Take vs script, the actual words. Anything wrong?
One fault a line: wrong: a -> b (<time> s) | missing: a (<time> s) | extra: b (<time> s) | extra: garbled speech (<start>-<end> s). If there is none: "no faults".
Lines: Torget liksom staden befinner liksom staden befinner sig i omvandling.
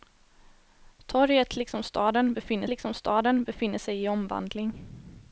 no faults